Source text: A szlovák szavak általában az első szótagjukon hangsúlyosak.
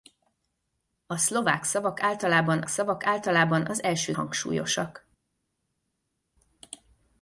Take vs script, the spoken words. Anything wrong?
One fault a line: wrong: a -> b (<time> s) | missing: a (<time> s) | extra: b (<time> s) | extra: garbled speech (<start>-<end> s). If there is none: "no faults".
extra: szavak általában (2.7 s)
missing: szótagjukon (4.1 s)